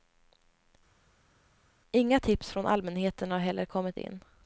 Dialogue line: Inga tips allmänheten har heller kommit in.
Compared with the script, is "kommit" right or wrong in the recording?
right